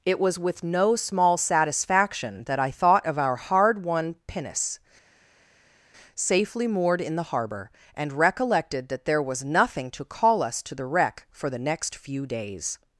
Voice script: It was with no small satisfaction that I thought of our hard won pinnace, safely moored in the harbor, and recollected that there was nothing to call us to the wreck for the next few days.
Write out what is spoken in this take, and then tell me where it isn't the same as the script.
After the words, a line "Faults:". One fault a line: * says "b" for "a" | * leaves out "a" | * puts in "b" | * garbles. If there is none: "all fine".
It was with no small satisfaction that I thought of our hard won pinnace, safely moored in the harbor, and recollected that there was nothing to call us to the wreck for the next few days.
Faults:
all fine